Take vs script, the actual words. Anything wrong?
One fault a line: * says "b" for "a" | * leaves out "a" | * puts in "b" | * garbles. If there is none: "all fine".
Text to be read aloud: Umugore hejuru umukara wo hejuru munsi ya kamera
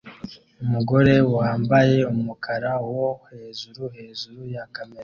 * says "wambaye" for "hejuru"
* says "hejuru" for "munsi"